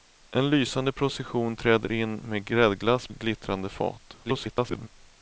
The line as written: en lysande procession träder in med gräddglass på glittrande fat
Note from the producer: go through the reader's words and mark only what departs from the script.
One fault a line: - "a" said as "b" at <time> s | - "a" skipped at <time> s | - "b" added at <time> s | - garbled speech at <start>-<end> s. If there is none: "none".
- "på" skipped at 3.1 s
- garbled speech at 4.2-4.9 s